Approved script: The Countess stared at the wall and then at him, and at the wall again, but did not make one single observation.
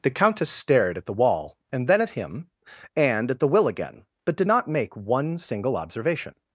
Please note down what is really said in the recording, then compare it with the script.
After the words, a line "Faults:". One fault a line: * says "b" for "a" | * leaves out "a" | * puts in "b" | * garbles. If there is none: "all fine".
The Countess stared at the wall and then at him, and at the will again, but did not make one single observation.
Faults:
* says "will" for "wall"